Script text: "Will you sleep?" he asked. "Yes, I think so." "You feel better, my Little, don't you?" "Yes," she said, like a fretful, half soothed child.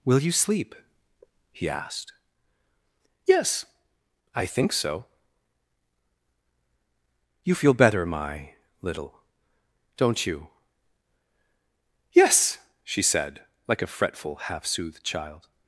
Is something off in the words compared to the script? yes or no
no